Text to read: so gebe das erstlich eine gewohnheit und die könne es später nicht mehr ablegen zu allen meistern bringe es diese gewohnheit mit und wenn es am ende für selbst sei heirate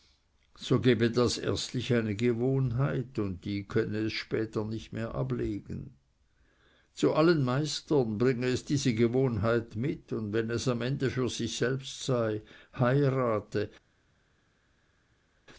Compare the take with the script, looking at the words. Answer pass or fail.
fail